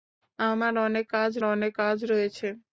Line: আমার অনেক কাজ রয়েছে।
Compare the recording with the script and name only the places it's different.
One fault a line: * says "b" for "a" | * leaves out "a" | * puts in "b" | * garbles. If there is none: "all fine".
* puts in "অনেক কাজ"